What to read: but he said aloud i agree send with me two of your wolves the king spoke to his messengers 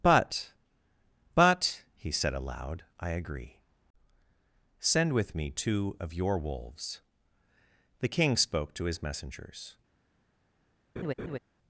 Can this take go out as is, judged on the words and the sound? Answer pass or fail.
fail